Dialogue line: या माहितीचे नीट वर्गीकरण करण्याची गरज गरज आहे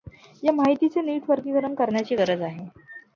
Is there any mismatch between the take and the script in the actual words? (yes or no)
yes